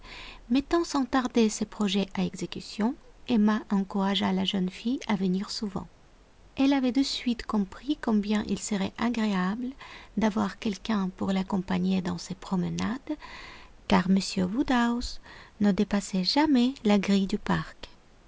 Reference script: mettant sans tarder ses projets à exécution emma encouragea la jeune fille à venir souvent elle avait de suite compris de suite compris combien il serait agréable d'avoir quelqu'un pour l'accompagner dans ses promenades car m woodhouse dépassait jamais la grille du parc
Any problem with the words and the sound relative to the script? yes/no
yes